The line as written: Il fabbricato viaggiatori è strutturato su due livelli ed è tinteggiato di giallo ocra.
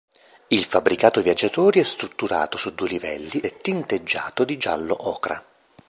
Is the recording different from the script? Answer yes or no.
yes